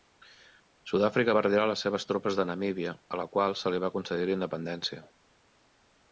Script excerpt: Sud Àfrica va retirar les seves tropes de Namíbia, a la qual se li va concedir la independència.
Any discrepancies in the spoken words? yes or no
no